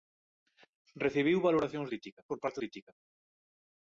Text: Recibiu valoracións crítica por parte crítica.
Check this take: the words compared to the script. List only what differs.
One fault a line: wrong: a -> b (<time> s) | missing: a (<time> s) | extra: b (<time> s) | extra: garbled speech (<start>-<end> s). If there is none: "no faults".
no faults